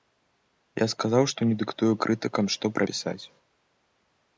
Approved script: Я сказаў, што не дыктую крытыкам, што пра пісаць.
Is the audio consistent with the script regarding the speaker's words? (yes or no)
yes